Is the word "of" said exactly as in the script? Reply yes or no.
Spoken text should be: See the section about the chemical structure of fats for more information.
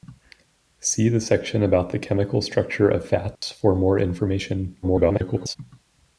yes